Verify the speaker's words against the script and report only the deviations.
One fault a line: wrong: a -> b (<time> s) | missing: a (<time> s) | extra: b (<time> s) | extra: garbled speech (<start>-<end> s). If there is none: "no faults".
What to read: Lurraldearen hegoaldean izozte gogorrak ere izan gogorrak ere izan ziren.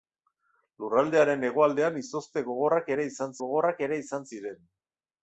no faults